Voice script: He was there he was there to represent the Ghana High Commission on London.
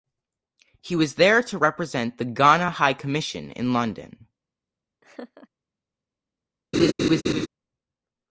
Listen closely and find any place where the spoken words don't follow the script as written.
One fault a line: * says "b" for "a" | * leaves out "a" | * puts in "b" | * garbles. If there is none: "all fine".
* leaves out "he was there"
* says "in" for "on"